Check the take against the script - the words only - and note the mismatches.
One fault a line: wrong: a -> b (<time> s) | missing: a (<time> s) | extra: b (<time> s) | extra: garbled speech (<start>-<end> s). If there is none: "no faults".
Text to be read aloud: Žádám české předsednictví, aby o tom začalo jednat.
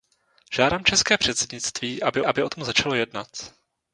extra: aby (2.2 s)